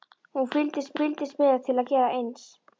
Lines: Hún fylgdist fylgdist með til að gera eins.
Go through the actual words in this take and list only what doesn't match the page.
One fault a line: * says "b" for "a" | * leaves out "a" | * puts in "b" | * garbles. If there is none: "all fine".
all fine